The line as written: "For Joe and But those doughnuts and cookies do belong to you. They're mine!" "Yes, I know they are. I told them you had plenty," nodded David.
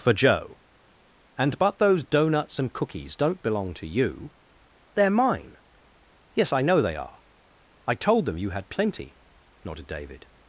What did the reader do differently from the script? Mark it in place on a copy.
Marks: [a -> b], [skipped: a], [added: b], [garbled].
"For Joe and But those doughnuts and cookies [do -> don't] belong to you. They're mine!" "Yes, I know they are. I told them you had plenty," nodded David.